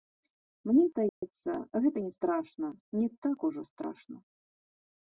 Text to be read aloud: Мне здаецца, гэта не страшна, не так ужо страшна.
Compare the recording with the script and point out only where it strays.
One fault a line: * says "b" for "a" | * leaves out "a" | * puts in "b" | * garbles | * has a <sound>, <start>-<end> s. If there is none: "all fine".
* has a dropout, 1.1-1.2 s